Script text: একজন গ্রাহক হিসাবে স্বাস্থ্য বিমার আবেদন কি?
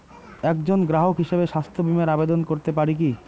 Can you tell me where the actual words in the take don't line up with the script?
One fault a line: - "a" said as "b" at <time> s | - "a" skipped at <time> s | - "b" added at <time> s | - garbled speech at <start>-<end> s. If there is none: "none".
- "করতে পারি" added at 2.4 s